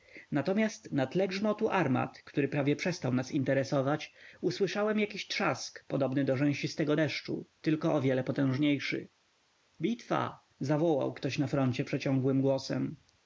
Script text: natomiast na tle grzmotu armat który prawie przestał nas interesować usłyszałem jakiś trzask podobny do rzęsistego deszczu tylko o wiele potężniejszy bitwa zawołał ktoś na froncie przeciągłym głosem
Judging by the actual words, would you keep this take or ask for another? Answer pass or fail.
pass